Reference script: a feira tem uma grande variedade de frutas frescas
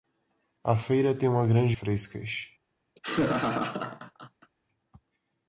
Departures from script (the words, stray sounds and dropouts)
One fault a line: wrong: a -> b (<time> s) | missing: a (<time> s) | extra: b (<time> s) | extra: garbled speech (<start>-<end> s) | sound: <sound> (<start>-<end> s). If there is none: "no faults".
missing: variedade de frutas (1.8 s)
sound: laugh (3.0-4.5 s)